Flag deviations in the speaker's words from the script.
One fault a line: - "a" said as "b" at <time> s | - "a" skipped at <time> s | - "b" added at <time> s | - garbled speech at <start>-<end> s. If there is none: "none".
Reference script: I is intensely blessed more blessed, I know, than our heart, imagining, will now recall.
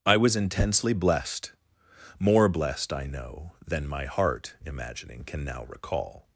- "is" said as "was" at 0.2 s
- "our" said as "my" at 3.9 s
- "will" said as "can" at 5.2 s